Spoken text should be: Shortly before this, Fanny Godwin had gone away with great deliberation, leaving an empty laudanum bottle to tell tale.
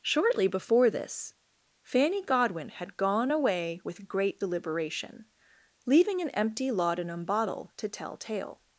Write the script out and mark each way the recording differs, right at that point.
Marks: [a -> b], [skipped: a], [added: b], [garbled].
Shortly before this, Fanny Godwin had gone away with great deliberation, leaving an empty laudanum bottle to tell tale.